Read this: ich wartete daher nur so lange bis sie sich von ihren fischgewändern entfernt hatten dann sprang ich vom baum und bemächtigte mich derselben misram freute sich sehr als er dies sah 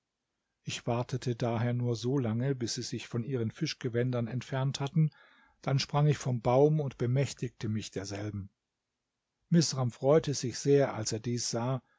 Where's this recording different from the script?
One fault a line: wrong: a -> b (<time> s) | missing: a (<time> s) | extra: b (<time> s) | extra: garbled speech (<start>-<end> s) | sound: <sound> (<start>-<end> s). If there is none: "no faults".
no faults